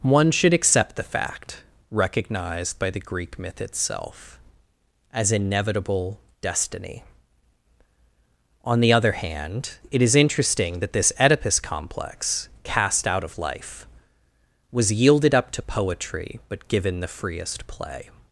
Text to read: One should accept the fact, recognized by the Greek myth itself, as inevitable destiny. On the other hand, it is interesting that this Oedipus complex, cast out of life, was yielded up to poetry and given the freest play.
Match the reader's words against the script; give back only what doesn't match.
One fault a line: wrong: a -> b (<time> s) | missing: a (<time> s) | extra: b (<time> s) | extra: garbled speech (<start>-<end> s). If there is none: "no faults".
wrong: and -> but (16.5 s)